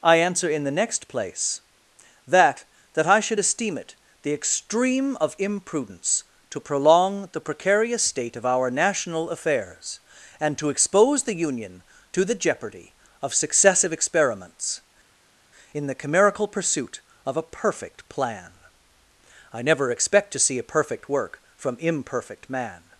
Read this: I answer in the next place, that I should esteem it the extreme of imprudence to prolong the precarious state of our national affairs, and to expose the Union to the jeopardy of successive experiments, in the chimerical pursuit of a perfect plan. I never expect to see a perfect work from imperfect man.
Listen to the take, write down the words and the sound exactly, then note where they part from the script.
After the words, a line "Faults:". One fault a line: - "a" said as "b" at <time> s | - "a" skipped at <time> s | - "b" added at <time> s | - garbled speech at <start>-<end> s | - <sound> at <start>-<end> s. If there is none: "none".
I answer in the next place, that that I should esteem it the extreme of imprudence to prolong the precarious state of our national affairs, and to expose the Union to the jeopardy of successive experiments, in the chimerical pursuit of a perfect plan. I never expect to see a perfect work from imperfect man.
Faults:
- "that" added at 2.9 s